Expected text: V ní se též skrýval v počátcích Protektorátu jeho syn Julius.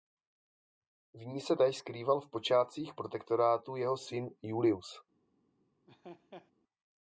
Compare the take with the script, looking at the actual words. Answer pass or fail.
pass